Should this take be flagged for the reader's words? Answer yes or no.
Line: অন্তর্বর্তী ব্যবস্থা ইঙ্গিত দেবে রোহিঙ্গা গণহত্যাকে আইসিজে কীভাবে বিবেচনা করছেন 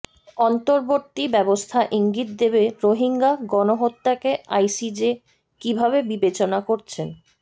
no